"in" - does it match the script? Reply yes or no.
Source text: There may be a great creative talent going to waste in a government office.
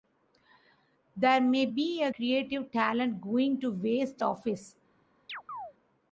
no